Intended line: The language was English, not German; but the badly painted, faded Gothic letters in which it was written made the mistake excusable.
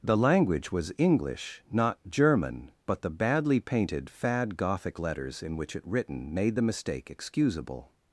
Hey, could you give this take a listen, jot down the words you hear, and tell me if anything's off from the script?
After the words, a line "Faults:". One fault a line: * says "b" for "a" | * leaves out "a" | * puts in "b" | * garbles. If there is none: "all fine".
The language was English, not German; but the badly painted, fad Gothic letters in which it written made the mistake excusable.
Faults:
* says "fad" for "faded"
* leaves out "was"